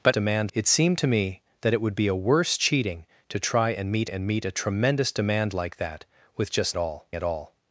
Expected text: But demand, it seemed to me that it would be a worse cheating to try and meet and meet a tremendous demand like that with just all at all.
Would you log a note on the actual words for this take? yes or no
no